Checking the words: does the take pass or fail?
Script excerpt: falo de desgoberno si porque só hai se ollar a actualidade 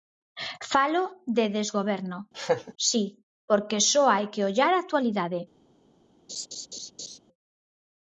fail